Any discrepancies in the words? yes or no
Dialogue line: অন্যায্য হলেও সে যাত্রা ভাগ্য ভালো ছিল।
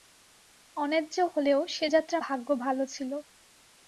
no